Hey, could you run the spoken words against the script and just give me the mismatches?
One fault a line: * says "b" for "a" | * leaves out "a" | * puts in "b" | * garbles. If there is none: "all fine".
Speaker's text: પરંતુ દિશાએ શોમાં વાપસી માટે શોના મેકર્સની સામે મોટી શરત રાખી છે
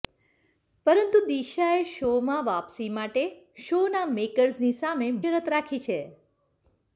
* leaves out "મોટી"